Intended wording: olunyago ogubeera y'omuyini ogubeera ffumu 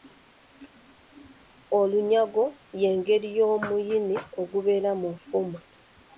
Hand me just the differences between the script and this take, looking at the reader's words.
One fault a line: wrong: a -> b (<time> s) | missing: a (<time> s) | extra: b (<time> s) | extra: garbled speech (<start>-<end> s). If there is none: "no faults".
wrong: ogubeera -> y'engeri (2.8 s)
extra: mu (5.0 s)